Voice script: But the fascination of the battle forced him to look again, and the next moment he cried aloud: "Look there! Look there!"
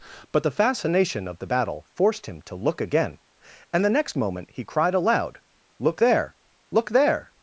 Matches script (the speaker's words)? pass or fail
pass